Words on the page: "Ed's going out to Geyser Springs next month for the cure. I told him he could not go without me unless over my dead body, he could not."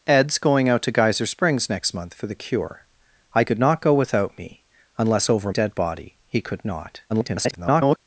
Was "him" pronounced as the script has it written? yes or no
no